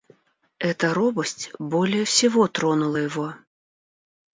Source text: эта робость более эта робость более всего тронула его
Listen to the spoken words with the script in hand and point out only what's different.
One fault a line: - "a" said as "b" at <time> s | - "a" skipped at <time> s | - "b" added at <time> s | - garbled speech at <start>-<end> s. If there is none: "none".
- "эта робость более" skipped at 2.0 s